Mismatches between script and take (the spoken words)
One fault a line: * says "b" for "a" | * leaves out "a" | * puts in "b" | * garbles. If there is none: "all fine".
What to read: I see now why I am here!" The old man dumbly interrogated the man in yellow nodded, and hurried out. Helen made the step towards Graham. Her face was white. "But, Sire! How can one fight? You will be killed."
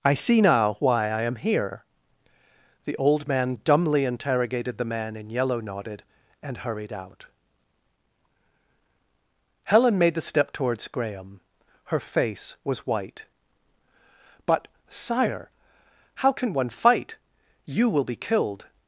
all fine